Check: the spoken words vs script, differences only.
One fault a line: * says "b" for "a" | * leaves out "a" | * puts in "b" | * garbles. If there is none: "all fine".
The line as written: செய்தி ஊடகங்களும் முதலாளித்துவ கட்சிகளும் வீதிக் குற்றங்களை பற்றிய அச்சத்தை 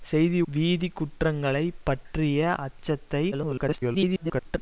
* leaves out "ஊடகங்களும் முதலாளித்துவ கட்சிகளும்"
* garbles